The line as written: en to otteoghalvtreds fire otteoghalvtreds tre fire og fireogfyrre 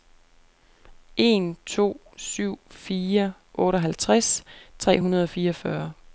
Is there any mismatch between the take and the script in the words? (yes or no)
yes